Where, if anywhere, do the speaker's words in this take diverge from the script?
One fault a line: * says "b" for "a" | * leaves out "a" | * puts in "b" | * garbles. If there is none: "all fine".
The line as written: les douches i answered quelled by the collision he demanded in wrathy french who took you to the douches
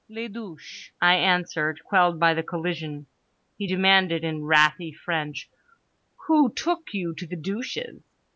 all fine